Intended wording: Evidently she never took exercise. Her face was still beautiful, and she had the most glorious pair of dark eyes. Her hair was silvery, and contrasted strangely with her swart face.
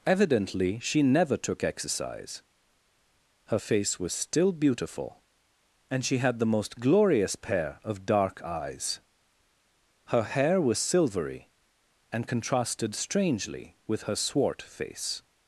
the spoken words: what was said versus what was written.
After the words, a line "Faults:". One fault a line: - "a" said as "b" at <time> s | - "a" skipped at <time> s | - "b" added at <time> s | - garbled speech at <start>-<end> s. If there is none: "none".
Evidently she never took exercise. Her face was still beautiful, and she had the most glorious pair of dark eyes. Her hair was silvery, and contrasted strangely with her swart face.
Faults:
none